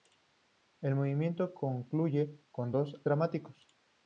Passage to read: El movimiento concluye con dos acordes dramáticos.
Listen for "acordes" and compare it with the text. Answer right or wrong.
wrong